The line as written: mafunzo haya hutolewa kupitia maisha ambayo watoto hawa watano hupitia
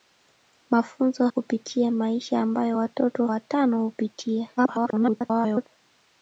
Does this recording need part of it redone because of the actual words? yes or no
yes